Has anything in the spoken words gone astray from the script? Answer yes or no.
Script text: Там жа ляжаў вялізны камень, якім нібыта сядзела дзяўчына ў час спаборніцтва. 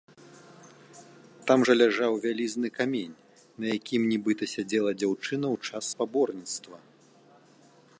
yes